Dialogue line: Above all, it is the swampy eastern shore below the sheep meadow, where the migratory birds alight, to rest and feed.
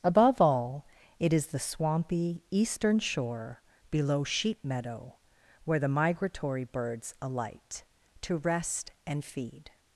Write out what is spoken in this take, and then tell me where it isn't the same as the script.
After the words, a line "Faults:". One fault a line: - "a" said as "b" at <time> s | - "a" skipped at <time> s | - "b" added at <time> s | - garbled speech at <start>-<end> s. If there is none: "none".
Above all, it is the swampy eastern shore below sheep meadow, where the migratory birds alight, to rest and feed.
Faults:
- "the" skipped at 4.2 s